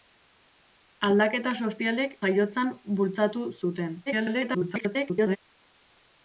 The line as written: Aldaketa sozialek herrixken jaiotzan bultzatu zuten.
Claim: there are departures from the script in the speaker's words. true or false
true